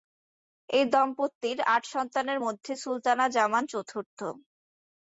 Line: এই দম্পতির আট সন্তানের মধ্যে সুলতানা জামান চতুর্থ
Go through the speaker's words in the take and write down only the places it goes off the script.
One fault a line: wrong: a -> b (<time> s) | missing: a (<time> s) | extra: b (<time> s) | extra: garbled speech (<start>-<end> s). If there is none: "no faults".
no faults